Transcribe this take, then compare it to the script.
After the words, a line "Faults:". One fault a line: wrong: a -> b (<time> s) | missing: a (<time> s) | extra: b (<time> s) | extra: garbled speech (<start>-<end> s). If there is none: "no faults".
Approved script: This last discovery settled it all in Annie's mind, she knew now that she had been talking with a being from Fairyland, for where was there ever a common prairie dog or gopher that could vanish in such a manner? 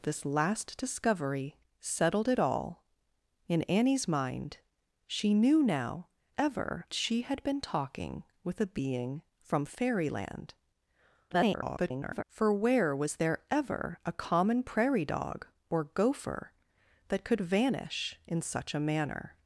This last discovery settled it all in Annie's mind, she knew now ever she had been talking with a being from Fairyland, [garbled] for where was there ever a common prairie dog or gopher that could vanish in such a manner?
Faults:
wrong: that -> ever (6.4 s)
extra: garbled speech (11.3-12.2 s)